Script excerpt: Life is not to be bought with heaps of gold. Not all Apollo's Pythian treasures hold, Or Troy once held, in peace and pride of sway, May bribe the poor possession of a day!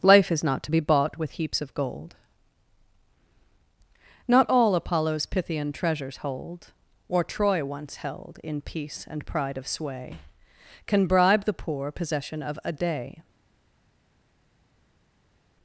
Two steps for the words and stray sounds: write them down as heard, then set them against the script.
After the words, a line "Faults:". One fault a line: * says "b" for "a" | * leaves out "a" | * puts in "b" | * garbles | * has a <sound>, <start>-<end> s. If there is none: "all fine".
Life is not to be bought with heaps of gold. Not all Apollo's Pythian treasures hold, Or Troy once held, in peace and pride of sway, Can bribe the poor possession of a day!
Faults:
* says "Can" for "May"